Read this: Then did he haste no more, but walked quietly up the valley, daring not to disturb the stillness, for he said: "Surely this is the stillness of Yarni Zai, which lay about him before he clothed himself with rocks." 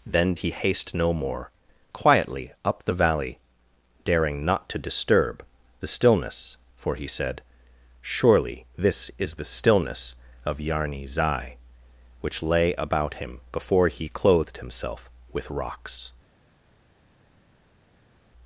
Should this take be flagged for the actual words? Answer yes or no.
yes